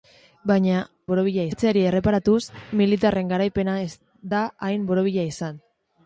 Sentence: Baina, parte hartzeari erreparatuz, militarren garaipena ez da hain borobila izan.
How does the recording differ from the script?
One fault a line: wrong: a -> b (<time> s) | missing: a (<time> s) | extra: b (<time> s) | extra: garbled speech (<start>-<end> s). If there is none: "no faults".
wrong: parte -> borobila (1.1 s)